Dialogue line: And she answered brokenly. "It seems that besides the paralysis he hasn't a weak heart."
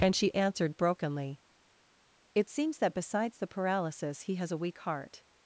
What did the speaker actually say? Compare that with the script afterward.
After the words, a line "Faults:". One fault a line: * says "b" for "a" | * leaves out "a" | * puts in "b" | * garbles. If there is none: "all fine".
And she answered brokenly. "It seems that besides the paralysis he has a weak heart."
Faults:
* says "has" for "hasn't"